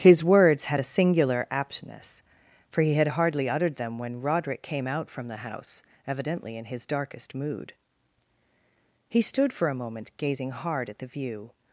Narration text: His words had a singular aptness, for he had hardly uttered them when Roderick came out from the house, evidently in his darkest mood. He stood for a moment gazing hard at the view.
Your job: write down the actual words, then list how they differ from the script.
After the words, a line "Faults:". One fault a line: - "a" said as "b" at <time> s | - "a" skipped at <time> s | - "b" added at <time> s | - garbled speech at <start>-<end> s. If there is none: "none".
His words had a singular aptness, for he had hardly uttered them when Roderick came out from the house, evidently in his darkest mood. He stood for a moment gazing hard at the view.
Faults:
none